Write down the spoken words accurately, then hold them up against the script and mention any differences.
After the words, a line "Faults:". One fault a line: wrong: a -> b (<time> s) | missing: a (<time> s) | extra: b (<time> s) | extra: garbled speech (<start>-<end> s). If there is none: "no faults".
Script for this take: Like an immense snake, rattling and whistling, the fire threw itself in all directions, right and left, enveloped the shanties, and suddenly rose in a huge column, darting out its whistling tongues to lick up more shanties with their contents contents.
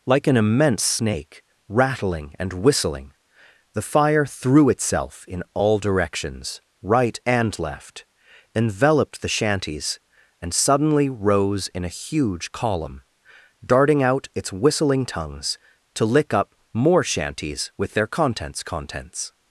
Like an immense snake, rattling and whistling, the fire threw itself in all directions, right and left, enveloped the shanties, and suddenly rose in a huge column, darting out its whistling tongues to lick up more shanties with their contents contents.
Faults:
no faults